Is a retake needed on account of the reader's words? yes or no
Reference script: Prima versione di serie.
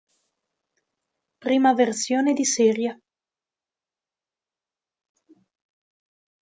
no